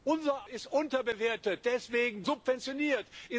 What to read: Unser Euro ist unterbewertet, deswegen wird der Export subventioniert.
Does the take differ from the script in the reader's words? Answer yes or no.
yes